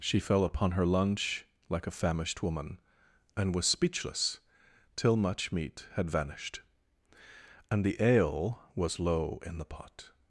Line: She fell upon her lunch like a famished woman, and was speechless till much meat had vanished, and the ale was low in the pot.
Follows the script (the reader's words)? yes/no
yes